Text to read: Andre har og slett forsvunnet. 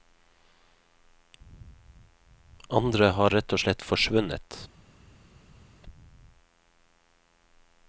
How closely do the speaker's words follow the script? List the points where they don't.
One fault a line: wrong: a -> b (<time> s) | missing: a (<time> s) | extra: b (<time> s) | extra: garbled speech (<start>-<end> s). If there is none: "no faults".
extra: rett (3.4 s)